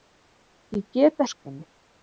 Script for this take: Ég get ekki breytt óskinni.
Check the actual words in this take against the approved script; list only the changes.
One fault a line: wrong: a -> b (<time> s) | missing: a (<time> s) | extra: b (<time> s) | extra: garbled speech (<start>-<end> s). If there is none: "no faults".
missing: ekki breytt (1.2 s)